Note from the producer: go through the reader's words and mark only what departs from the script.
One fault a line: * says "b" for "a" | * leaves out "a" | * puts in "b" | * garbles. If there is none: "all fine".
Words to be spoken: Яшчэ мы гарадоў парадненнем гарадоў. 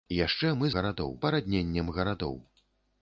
all fine